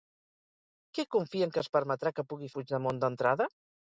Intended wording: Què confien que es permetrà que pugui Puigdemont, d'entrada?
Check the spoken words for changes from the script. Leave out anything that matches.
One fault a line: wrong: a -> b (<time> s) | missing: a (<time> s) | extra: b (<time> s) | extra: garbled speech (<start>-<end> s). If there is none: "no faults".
no faults